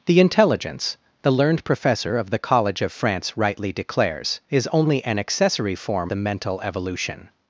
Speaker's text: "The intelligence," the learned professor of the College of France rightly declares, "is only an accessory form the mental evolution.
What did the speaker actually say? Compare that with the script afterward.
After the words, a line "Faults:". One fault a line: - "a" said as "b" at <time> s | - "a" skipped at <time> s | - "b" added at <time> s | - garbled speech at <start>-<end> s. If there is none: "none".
"The intelligence," the learned professor of the College of France rightly declares, "is only an accessory form the mental evolution.
Faults:
none